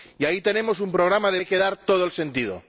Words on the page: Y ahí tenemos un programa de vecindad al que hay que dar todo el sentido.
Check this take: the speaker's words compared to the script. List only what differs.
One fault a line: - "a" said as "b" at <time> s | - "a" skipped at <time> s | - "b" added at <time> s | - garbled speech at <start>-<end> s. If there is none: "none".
- "vecindad al que" skipped at 1.4 s